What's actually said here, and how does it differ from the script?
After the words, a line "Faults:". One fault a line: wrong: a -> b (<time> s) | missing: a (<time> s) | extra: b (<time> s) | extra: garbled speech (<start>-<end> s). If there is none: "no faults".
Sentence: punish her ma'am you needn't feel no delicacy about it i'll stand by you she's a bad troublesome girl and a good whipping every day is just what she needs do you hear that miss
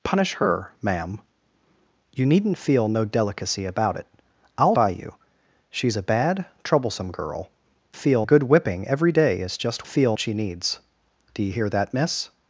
punish her ma'am you needn't feel no delicacy about it i'll by you she's a bad troublesome girl feel a good whipping every day is just feel she needs do you hear that miss
Faults:
missing: stand (4.8 s)
wrong: and -> feel (7.9 s)
wrong: what -> feel (9.9 s)